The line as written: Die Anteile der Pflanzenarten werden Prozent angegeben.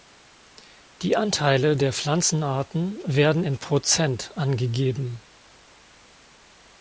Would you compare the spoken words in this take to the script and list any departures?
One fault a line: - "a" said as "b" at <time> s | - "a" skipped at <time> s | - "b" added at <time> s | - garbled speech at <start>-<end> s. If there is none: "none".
- "in" added at 3.4 s